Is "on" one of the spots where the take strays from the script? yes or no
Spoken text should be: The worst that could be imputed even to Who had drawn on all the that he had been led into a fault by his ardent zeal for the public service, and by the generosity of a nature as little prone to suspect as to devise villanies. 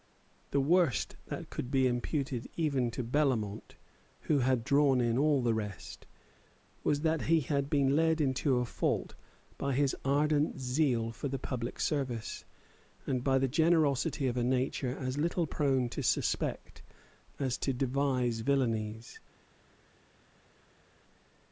yes